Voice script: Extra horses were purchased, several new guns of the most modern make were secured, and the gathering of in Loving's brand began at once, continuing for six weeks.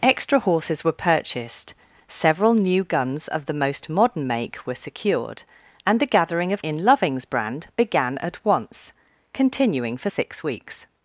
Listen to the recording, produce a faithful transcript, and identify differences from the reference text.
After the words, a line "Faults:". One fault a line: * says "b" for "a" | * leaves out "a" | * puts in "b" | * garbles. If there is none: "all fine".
Extra horses were purchased, several new guns of the most modern make were secured, and the gathering of in Loving's brand began at once, continuing for six weeks.
Faults:
all fine